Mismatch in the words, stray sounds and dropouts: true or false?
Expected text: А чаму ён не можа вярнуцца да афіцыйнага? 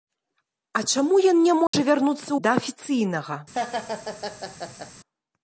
true